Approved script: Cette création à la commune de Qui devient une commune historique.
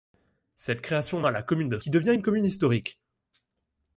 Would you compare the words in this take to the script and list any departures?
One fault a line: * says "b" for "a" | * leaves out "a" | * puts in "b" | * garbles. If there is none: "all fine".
all fine